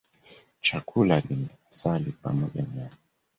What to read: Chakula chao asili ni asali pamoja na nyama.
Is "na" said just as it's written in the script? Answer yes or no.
no